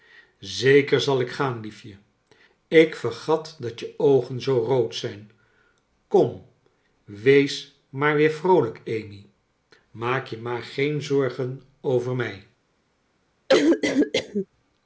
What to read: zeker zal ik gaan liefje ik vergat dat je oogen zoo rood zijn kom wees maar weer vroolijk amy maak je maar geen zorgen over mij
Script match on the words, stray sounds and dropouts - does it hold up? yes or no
no